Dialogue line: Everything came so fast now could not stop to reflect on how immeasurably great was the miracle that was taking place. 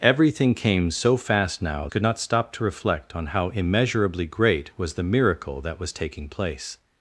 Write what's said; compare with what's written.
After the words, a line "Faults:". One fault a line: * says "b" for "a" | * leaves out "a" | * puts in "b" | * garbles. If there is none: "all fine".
Everything came so fast now could not stop to reflect on how immeasurably great was the miracle that was taking place.
Faults:
all fine